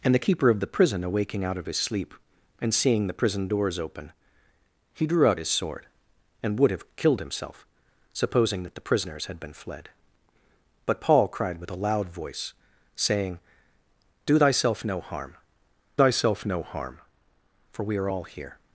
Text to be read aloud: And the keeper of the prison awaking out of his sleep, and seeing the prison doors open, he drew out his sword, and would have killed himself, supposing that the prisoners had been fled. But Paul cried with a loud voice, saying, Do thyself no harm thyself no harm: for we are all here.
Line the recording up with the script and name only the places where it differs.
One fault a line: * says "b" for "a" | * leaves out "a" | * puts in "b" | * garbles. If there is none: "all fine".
all fine